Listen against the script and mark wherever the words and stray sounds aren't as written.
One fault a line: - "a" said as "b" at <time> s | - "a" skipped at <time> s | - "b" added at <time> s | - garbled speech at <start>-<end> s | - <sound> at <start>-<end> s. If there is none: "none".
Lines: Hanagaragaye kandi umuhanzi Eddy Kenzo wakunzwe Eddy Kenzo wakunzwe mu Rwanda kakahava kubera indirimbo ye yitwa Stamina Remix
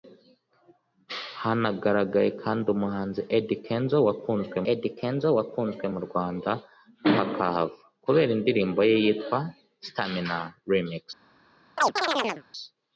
- chirp at 11.8-12.4 s